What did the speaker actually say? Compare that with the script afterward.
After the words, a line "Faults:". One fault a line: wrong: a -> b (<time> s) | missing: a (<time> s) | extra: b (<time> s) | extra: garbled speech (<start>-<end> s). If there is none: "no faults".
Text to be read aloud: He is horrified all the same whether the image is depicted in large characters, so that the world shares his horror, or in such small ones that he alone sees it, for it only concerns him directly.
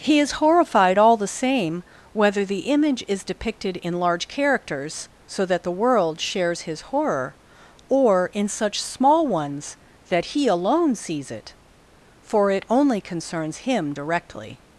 He is horrified all the same whether the image is depicted in large characters, so that the world shares his horror, or in such small ones that he alone sees it, for it only concerns him directly.
Faults:
no faults